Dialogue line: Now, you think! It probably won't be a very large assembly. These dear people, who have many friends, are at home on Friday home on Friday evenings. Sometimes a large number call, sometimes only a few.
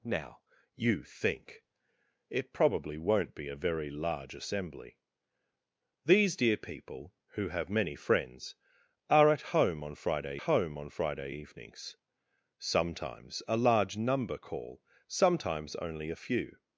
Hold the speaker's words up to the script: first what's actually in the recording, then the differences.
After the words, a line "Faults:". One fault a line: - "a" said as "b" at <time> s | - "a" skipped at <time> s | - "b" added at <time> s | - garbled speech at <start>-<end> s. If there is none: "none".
Now, you think! It probably won't be a very large assembly. These dear people, who have many friends, are at home on Friday home on Friday evenings. Sometimes a large number call, sometimes only a few.
Faults:
none